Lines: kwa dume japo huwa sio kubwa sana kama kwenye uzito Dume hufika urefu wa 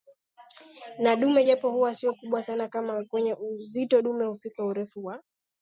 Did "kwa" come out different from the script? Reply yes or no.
yes